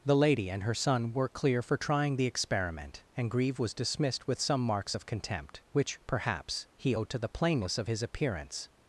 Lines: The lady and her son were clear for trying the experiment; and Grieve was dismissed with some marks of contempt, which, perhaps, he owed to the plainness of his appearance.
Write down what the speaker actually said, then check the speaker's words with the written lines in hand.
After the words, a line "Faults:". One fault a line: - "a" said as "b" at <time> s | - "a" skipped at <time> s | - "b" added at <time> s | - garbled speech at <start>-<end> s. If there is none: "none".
The lady and her son were clear for trying the experiment; and Grieve was dismissed with some marks of contempt, which, perhaps, he owed to the plainness of his appearance.
Faults:
none